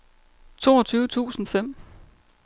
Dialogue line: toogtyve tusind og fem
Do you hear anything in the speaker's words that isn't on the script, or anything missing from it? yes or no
no